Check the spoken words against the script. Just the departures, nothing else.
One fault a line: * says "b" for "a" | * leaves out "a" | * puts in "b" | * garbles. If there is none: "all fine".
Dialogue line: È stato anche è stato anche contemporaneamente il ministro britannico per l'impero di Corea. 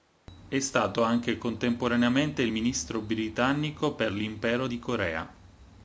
* leaves out "è stato anche"